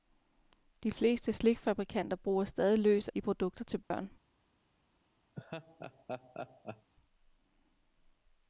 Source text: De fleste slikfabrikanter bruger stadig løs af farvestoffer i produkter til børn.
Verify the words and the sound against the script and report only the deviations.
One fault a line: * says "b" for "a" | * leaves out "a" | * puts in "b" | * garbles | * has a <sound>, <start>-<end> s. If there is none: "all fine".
* leaves out "af farvestoffer"
* has a dropout, 3.8-3.9 s
* has a laugh, 5.3-6.9 s